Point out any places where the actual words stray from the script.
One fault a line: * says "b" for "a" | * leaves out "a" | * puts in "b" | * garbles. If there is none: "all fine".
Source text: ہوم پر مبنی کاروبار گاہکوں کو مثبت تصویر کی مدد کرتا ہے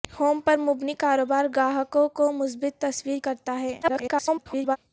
* leaves out "کی مدد"
* garbles